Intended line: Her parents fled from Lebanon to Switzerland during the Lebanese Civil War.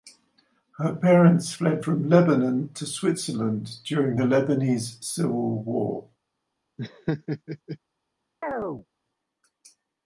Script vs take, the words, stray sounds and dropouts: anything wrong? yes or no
yes